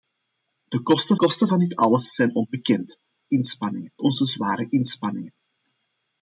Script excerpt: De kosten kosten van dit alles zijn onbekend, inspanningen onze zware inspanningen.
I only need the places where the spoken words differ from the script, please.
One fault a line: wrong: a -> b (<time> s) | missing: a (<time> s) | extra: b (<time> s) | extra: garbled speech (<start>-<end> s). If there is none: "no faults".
no faults